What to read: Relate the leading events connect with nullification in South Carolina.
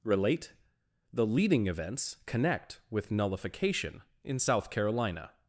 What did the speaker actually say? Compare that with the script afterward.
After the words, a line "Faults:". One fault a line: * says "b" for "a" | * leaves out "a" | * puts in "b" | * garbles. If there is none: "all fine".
Relate the leading events connect with nullification in South Carolina.
Faults:
all fine